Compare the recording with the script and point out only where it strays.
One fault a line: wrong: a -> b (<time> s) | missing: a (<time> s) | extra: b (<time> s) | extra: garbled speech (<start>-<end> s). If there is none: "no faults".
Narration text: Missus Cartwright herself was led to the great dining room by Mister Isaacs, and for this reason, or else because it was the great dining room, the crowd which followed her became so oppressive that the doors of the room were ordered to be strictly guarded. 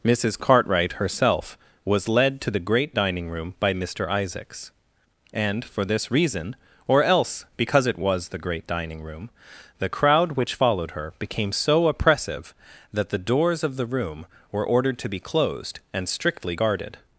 extra: closed and (15.2 s)